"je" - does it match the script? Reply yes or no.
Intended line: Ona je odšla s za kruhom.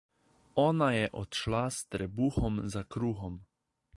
yes